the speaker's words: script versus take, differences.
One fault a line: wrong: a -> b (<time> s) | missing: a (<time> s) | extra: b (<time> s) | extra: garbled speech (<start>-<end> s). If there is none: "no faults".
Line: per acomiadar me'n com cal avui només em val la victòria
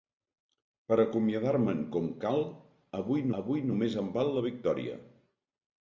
extra: avui (3.4 s)